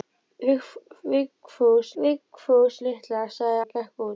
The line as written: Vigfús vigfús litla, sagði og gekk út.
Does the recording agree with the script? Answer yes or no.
yes